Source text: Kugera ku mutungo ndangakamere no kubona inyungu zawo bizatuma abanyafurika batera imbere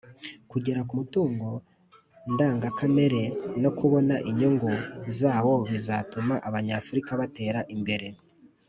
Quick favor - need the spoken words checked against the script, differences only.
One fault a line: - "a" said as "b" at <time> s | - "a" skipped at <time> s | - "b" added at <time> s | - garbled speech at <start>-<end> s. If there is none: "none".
none